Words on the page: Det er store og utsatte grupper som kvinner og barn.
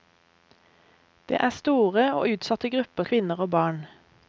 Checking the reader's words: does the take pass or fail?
fail